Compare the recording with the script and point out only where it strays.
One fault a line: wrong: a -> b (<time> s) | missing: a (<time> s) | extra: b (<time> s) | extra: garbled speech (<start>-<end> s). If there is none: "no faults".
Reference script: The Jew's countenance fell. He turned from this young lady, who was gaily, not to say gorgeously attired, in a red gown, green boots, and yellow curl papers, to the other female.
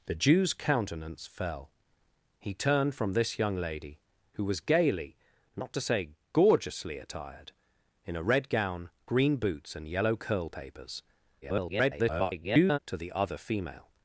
extra: garbled speech (11.4-12.8 s)